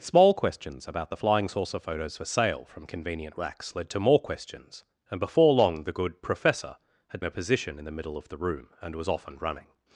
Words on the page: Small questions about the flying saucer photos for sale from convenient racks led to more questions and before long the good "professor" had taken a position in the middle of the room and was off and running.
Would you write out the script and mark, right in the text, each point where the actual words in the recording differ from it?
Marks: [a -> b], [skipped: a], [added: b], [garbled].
Small questions about the flying saucer photos for sale from convenient racks led to more questions and before long the good "professor" had [skipped: taken] a position in the middle of the room and was off and running.